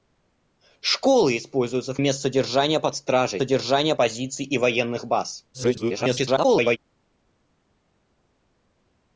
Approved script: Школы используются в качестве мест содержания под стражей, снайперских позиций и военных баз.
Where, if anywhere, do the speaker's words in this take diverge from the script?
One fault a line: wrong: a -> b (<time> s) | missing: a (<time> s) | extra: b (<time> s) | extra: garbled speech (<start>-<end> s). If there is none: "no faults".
missing: качестве (2.0 s)
wrong: снайперских -> содержания (3.4 s)
extra: garbled speech (5.5-6.8 s)